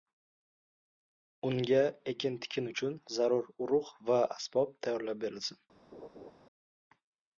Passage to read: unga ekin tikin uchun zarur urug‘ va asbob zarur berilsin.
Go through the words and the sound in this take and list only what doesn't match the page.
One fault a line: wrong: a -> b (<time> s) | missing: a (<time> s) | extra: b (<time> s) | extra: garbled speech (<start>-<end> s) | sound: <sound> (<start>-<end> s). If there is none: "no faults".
wrong: zarur -> tayyorlab (4.8 s)
sound: laugh (5.9-6.3 s)